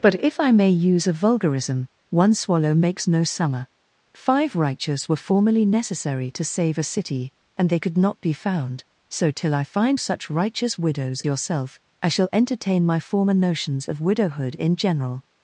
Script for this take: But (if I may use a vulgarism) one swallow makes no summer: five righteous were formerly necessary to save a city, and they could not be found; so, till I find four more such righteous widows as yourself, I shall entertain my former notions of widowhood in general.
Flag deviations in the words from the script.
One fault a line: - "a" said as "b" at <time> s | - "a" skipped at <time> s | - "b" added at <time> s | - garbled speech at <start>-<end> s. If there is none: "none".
- "four more" skipped at 10.0 s
- "as" skipped at 11.2 s